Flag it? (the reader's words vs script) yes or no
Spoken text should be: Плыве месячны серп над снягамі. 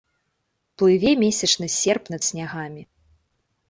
no